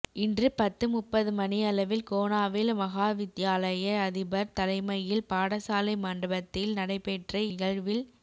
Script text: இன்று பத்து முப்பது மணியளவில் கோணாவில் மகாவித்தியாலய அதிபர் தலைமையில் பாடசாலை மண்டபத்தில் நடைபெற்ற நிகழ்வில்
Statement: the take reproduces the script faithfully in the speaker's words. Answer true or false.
true